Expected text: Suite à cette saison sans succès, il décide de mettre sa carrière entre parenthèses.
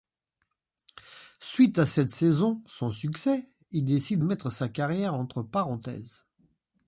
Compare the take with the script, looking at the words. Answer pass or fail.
fail